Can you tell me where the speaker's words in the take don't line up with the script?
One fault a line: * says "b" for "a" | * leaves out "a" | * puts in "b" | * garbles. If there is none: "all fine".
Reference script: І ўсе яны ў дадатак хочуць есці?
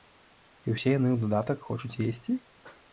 all fine